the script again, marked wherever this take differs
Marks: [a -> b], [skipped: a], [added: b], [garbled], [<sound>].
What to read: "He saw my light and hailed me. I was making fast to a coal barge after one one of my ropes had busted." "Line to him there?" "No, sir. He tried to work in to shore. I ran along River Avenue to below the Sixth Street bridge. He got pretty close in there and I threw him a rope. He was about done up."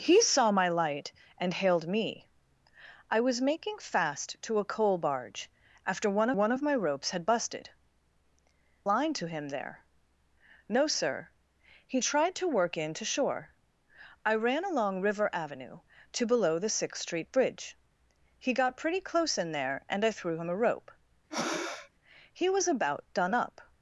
"He saw my light and hailed me. I was making fast to a coal barge after one one of my ropes had busted." "Line to him there?" "No, sir. He tried to work in to shore. I ran along River Avenue to below the Sixth Street bridge. He got pretty close in there and I threw him a rope. [breath] He was about done up."